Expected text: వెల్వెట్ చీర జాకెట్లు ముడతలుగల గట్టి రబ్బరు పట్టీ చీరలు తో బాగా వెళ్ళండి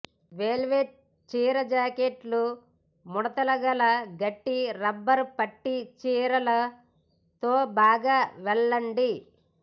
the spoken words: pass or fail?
pass